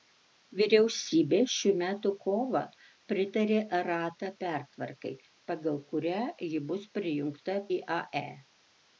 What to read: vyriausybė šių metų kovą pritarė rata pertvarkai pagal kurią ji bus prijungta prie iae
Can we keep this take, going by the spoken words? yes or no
no